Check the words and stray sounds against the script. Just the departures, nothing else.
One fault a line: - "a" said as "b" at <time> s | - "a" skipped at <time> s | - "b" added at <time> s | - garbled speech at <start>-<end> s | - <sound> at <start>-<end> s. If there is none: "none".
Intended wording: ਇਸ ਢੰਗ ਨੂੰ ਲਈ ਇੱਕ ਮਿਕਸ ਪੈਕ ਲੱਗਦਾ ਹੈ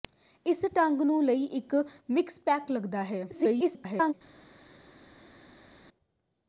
- garbled speech at 3.3-4.1 s